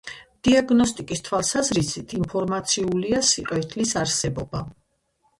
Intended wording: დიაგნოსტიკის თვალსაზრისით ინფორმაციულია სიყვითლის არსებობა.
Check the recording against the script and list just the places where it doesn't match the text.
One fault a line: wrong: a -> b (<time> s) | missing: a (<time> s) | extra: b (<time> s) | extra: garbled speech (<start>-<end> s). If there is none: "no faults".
no faults